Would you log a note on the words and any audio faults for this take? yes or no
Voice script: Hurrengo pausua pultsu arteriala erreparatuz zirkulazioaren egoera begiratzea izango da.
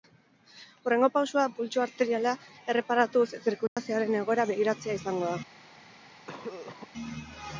yes